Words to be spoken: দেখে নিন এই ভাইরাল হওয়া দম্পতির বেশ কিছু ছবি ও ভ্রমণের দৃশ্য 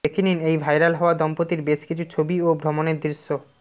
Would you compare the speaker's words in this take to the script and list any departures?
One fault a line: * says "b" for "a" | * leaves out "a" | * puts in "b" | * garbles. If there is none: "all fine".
all fine